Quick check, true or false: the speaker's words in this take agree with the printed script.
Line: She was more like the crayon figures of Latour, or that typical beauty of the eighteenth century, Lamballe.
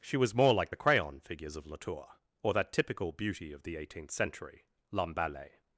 true